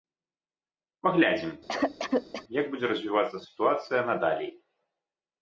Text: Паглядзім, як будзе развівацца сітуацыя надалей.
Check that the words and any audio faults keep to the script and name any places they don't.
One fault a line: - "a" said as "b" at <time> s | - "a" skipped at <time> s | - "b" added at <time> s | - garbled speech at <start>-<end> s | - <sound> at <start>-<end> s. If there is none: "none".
- cough at 1.7-2.4 s